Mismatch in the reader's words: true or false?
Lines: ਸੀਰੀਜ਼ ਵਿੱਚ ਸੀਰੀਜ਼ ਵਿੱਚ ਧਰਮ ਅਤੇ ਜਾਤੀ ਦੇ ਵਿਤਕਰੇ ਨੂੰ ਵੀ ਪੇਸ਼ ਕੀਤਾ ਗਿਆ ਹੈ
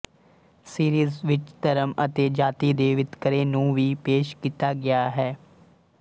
true